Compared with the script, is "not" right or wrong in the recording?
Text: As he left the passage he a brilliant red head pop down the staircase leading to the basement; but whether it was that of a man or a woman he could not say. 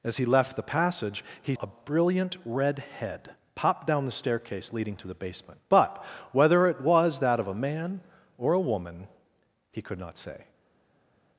right